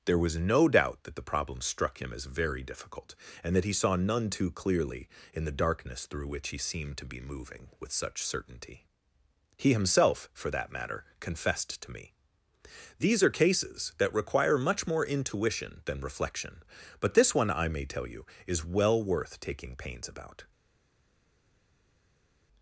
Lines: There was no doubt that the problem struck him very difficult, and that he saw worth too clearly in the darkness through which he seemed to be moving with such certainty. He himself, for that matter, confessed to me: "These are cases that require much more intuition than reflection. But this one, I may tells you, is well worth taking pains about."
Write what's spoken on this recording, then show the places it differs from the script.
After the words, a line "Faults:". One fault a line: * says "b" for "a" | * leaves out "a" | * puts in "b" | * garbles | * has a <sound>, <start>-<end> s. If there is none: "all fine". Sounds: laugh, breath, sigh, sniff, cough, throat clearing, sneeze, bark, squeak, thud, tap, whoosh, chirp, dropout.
There was no doubt that the problem struck him as very difficult, and that he saw none too clearly in the darkness through which he seemed to be moving with such certainty. He himself, for that matter, confessed to me: "These are cases that require much more intuition than reflection. But this one, I may tell you, is well worth taking pains about."
Faults:
* puts in "as"
* says "none" for "worth"
* says "tell" for "tells"